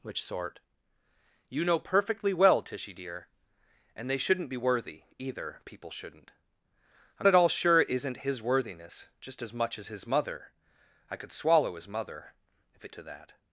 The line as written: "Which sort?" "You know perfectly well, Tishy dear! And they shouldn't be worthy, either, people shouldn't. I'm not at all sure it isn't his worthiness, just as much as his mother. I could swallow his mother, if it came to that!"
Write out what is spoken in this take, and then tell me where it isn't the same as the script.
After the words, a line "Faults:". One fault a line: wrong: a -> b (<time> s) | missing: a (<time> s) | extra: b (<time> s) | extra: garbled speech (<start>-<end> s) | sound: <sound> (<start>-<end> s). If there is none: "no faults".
"Which sort?" "You know perfectly well, Tishy dear! And they shouldn't be worthy, either, people shouldn't. I'm at all sure it isn't his worthiness, just as much as his mother. I could swallow his mother, if it to that!"
Faults:
missing: not (7.3 s)
missing: came (12.9 s)